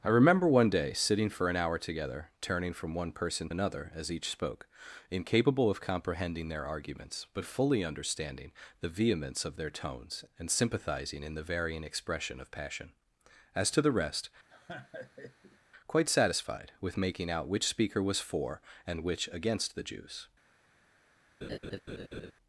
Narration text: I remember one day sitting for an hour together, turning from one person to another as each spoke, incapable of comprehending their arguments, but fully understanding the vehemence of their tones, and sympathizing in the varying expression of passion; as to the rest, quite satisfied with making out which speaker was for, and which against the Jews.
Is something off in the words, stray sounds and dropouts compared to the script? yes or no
yes